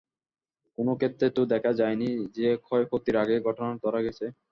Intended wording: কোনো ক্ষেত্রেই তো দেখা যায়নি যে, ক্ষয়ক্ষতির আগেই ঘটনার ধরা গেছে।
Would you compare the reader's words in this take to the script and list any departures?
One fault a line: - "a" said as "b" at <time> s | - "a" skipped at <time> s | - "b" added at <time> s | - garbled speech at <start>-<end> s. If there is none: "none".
none